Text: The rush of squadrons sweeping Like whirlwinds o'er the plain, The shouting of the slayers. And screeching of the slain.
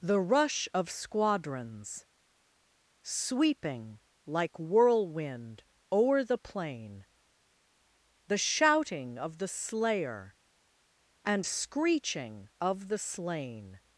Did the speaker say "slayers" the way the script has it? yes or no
no